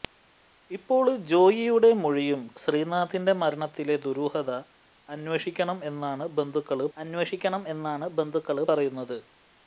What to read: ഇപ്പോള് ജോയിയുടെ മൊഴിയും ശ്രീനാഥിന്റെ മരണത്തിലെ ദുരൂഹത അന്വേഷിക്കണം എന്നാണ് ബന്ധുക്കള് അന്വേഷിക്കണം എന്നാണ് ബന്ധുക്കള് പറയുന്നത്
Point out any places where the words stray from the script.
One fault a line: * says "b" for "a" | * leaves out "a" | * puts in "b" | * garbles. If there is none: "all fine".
all fine